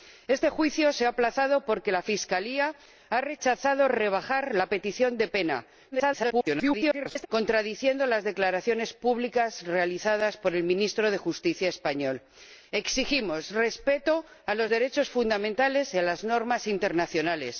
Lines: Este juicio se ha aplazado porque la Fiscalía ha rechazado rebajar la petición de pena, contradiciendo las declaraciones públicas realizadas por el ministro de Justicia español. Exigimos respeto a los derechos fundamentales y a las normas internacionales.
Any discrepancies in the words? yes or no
yes